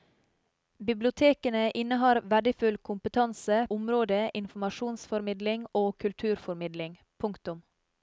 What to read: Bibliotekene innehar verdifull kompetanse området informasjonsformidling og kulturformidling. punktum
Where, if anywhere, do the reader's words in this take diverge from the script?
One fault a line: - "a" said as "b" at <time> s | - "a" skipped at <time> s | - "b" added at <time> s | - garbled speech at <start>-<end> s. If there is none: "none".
none